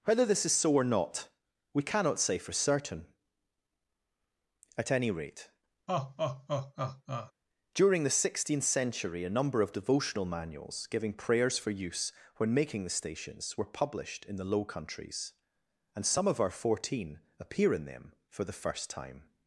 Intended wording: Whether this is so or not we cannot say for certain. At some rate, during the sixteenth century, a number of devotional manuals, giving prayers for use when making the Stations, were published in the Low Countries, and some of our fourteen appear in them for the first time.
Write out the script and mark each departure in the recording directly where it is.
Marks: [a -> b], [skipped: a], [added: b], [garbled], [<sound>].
Whether this is so or not we cannot say for certain. At [some -> any] rate, [laugh] during the sixteenth century, a number of devotional manuals, giving prayers for use when making the Stations, were published in the Low Countries, and some of our fourteen appear in them for the first time.